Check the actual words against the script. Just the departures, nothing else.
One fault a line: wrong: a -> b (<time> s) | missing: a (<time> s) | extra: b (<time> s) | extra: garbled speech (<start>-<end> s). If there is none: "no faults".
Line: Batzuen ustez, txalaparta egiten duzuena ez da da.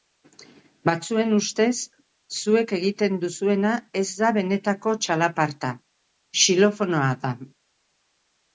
wrong: txalaparta -> zuek (2.4 s)
extra: benetako txalaparta xilofonoa (4.4 s)